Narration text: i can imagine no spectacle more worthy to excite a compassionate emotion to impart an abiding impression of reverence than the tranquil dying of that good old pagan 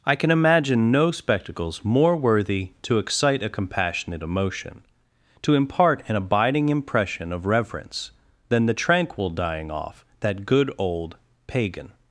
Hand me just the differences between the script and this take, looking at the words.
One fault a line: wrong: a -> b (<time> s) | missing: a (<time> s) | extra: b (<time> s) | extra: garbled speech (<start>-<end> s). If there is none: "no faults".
wrong: spectacle -> spectacles (1.1 s)
wrong: of -> off (9.7 s)